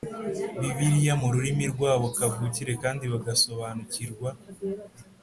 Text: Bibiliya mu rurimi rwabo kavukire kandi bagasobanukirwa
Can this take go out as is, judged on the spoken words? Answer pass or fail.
pass